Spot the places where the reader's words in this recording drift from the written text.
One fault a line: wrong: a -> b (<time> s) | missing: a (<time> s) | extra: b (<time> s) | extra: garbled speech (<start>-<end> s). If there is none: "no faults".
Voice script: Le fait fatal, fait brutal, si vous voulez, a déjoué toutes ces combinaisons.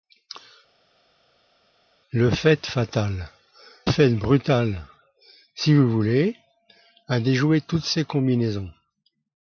no faults